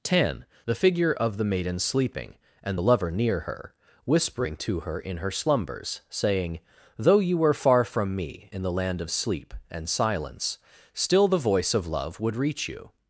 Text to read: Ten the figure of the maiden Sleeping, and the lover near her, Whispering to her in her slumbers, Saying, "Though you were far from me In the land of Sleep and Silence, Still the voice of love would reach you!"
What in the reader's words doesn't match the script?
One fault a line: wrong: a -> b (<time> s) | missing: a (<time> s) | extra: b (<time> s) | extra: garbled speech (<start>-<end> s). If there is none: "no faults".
no faults